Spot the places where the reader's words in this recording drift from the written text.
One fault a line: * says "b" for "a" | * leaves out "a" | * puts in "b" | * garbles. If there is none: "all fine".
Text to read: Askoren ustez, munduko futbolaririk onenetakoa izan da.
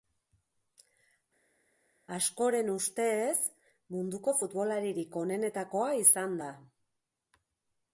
all fine